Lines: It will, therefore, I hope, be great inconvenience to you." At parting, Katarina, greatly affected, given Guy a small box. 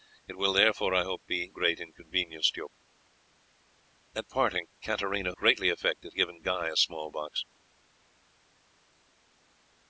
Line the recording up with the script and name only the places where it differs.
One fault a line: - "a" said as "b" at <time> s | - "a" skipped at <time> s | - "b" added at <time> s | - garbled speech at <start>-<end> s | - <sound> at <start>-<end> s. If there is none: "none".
none